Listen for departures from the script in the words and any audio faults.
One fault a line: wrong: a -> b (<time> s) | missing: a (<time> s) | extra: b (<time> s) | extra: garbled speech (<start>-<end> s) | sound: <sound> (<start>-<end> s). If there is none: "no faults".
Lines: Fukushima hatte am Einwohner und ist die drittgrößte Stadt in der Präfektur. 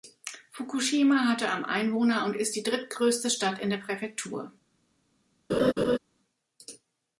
sound: laugh (5.5-6.0 s)